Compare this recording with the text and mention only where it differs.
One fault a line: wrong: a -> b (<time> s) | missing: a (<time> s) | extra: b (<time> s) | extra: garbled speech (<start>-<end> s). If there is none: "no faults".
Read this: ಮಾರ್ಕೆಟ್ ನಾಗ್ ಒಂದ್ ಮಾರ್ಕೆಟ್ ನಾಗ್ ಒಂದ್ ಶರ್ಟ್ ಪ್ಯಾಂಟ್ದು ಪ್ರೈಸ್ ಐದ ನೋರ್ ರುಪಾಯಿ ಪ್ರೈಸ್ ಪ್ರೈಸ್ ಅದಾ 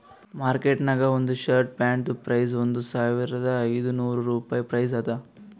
missing: ಮಾರ್ಕೆಟ್ ನಾಗ್ ಒಂದ್ (1.3 s)
extra: ಒಂದ್ ಸಾವಿರದ (2.6 s)
missing: ಪ್ರೈಸ್ (5.0 s)